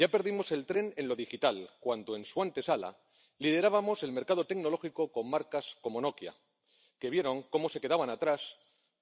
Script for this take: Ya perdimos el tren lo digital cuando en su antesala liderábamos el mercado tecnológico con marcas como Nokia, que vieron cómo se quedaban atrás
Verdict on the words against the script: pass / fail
fail